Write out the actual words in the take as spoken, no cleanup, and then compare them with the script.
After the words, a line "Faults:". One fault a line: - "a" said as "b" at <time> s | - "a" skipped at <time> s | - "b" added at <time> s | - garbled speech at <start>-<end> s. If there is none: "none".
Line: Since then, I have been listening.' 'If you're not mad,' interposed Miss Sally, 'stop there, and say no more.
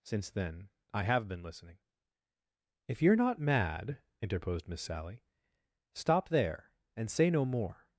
Since then, I have been listening.' 'If you're not mad,' interposed Miss Sally, 'stop there, and say no more.
Faults:
none